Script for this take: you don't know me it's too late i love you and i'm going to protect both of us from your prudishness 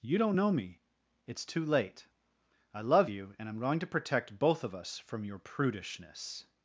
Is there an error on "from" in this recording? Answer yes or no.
no